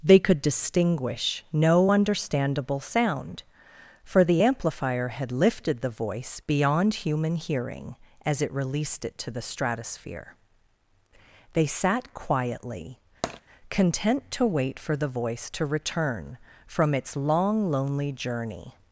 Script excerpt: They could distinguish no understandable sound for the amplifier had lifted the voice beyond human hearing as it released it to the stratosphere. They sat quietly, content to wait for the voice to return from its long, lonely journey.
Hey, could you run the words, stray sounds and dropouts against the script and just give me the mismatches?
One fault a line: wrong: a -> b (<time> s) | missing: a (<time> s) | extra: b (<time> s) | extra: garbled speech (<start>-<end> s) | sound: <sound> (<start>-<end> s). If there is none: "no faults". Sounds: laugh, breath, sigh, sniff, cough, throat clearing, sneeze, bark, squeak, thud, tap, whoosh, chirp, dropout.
sound: tap (13.2-13.4 s)